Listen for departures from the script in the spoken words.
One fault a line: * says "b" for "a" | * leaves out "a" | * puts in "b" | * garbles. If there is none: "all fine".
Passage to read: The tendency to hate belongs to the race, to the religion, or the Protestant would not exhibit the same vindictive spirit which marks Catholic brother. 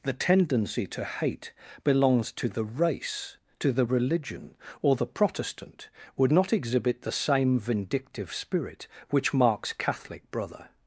all fine